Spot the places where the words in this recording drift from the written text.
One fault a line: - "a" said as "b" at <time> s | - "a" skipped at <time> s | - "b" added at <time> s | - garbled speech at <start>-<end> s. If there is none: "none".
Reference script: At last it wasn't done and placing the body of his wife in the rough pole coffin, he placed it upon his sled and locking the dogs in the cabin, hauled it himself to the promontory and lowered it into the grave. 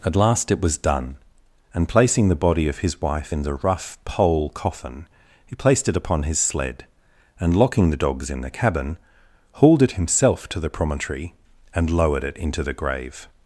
- "wasn't" said as "was" at 0.6 s